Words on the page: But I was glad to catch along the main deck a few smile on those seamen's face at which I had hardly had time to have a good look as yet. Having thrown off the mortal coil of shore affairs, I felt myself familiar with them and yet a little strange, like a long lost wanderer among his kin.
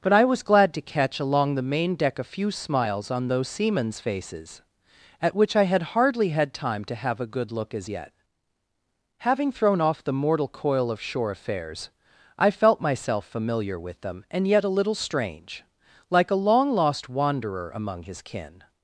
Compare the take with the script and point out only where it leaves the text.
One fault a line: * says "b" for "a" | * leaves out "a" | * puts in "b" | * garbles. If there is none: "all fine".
* says "smiles" for "smile"
* says "faces" for "face"